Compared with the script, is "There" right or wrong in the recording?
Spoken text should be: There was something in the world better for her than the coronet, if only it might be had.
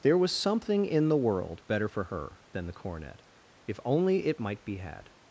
right